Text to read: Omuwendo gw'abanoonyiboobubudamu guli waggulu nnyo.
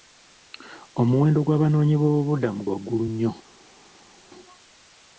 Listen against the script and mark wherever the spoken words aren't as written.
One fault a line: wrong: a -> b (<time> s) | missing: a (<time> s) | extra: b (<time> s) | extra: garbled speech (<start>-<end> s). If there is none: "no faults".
missing: guli (2.6 s)